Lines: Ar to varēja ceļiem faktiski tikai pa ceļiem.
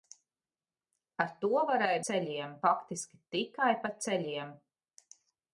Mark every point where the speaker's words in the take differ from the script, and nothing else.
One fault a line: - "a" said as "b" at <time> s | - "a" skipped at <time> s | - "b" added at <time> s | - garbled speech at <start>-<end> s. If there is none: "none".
none